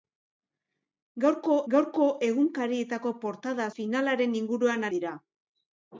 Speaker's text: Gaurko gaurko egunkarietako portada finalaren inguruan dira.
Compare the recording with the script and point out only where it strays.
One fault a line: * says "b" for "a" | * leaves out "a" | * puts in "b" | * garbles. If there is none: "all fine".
all fine